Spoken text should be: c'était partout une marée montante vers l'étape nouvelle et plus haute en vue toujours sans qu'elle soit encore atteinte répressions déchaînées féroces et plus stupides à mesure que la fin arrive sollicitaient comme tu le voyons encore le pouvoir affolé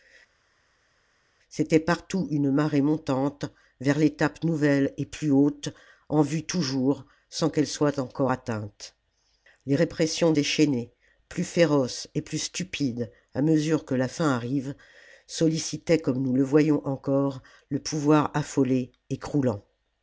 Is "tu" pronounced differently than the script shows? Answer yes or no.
yes